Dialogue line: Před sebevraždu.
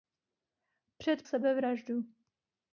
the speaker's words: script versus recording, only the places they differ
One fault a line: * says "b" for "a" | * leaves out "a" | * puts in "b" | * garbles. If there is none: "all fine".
all fine